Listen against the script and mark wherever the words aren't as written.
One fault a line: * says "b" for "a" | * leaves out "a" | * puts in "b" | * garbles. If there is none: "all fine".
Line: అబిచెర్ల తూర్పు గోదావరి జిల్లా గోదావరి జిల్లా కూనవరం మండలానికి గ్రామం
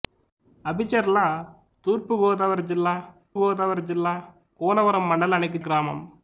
all fine